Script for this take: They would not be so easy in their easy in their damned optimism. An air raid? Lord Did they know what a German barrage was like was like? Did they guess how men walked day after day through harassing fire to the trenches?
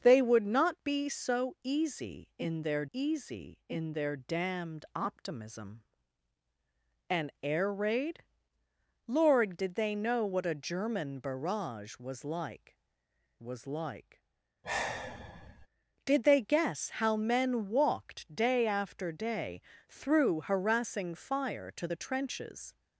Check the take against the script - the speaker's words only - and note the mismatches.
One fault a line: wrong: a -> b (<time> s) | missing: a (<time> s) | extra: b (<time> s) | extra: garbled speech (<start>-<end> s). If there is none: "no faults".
no faults